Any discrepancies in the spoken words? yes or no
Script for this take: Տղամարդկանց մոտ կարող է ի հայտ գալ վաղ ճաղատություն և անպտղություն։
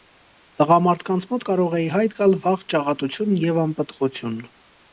no